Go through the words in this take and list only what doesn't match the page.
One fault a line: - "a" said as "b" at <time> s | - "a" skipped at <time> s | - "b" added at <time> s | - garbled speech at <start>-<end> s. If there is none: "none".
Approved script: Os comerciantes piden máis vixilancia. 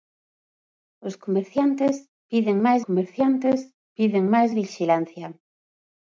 - "comerciantes piden máis" added at 2.8 s